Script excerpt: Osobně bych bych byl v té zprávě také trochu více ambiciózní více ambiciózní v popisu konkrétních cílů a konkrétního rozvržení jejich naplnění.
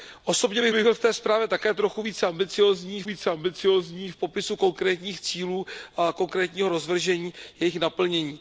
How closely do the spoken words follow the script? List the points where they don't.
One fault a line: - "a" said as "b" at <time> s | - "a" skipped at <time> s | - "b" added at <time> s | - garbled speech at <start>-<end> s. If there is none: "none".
none